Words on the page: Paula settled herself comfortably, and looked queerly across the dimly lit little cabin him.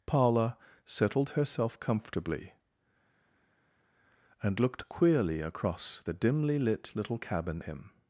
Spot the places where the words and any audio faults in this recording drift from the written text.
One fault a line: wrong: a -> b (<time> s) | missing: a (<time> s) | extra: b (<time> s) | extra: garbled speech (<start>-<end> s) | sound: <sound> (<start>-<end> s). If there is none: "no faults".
no faults